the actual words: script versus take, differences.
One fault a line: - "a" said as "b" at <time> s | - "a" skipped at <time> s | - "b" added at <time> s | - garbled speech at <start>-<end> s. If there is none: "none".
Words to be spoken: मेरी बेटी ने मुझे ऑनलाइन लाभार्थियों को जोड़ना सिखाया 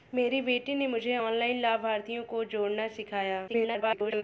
- garbled speech at 3.5-4.2 s